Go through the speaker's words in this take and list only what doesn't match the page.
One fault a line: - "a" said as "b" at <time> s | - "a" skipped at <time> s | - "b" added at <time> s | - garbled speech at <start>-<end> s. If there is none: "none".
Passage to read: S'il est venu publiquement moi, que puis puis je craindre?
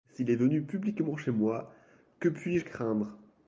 - "chez" added at 1.1 s
- "puis" skipped at 2.6 s